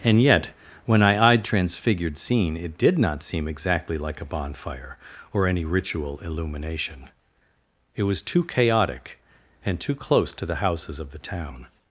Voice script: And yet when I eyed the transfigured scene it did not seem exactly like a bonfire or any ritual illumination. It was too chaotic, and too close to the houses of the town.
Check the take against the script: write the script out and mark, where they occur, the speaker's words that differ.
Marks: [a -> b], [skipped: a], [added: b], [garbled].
And yet when I eyed [skipped: the] transfigured scene it did not seem exactly like a bonfire or any ritual illumination. It was too chaotic, and too close to the houses of the town.